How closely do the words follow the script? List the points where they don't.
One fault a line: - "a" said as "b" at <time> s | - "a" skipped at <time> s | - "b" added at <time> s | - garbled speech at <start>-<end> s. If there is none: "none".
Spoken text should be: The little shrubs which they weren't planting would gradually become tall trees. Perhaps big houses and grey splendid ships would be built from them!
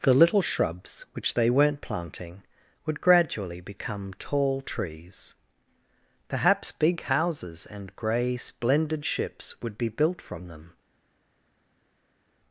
none